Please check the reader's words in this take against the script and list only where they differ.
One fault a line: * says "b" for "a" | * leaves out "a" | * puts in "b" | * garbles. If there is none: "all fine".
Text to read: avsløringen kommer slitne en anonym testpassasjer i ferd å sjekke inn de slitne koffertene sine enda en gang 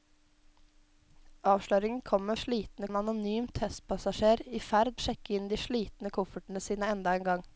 all fine